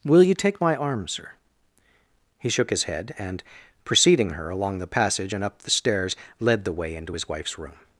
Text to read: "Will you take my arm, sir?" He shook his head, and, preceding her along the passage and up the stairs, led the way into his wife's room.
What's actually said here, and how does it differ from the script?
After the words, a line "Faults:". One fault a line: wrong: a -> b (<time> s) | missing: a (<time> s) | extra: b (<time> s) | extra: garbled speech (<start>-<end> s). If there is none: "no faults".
"Will you take my arm, sir?" He shook his head, and, preceding her along the passage and up the stairs, led the way into his wife's room.
Faults:
no faults